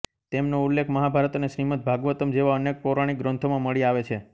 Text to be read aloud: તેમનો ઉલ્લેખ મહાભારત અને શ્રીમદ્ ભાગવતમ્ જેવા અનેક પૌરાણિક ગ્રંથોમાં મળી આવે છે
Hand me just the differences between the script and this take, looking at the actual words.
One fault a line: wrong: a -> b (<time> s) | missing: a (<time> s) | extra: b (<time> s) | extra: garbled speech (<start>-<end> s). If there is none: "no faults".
no faults